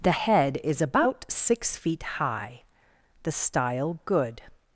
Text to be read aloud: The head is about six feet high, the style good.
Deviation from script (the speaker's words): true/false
false